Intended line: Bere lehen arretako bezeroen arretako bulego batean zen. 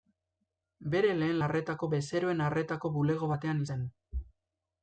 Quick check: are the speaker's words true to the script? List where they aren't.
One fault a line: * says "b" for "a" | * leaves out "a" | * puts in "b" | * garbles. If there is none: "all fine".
all fine